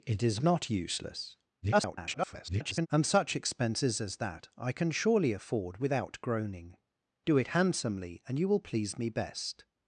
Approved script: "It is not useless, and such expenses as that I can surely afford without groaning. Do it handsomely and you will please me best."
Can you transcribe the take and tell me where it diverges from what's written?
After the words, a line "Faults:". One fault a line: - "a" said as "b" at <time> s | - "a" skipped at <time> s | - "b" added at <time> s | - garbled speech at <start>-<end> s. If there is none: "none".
"It is not useless, [garbled] and such expenses as that I can surely afford without groaning. Do it handsomely and you will please me best."
Faults:
- garbled speech at 1.6-2.9 s